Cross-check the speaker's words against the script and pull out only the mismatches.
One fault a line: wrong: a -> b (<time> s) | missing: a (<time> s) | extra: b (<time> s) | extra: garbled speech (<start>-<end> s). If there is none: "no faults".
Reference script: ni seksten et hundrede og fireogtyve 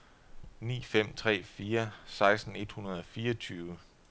extra: fem tre fire (0.8 s)